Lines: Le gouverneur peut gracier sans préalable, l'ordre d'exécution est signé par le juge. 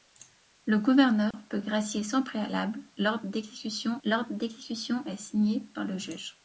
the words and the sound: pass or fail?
fail